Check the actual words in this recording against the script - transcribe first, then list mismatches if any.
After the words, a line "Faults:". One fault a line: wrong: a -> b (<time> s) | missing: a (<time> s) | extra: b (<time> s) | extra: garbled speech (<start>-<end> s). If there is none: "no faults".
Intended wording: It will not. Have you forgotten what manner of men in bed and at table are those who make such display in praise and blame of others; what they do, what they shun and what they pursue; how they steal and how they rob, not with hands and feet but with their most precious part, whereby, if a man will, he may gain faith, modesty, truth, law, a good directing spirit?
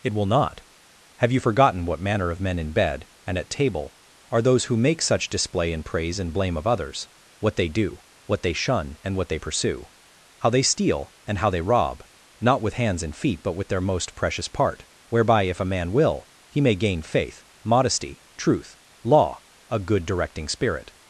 It will not. Have you forgotten what manner of men in bed and at table are those who make such display in praise and blame of others; what they do, what they shun and what they pursue; how they steal and how they rob, not with hands and feet but with their most precious part, whereby, if a man will, he may gain faith, modesty, truth, law, a good directing spirit?
Faults:
no faults